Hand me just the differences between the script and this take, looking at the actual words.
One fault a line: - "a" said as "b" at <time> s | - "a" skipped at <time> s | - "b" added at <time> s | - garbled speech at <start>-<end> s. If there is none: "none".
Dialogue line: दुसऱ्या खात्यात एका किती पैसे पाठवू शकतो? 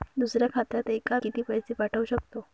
none